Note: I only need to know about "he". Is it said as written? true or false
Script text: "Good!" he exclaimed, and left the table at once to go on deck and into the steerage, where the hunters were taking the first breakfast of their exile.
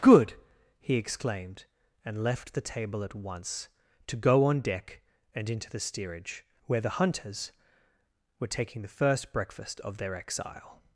true